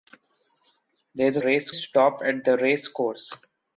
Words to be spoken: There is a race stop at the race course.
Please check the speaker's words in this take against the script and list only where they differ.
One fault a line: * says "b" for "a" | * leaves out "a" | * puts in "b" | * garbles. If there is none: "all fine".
all fine